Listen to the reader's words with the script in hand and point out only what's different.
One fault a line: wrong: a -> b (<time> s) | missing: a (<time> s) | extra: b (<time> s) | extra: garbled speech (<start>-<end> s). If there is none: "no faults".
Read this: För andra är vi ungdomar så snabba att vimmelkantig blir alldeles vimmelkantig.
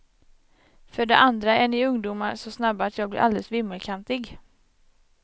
extra: det (1.1 s)
wrong: vi -> ni (1.7 s)
wrong: vimmelkantig -> jag (3.0 s)